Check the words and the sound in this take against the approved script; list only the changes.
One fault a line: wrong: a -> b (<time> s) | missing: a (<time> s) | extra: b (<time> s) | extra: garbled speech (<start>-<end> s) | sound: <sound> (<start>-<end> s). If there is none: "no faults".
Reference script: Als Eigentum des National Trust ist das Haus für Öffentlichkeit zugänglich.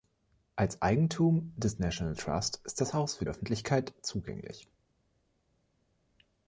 no faults